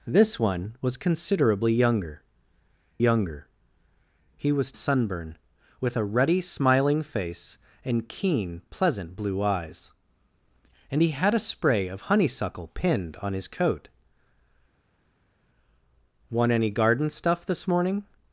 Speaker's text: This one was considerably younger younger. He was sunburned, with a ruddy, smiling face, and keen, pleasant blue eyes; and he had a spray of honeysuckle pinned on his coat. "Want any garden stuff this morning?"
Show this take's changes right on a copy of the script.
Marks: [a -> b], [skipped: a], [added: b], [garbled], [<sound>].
This one was considerably younger younger. He was sunburned, with a ruddy, smiling face, and keen, pleasant blue eyes; and he had a spray of honeysuckle pinned on his coat. "Want any garden stuff this morning?"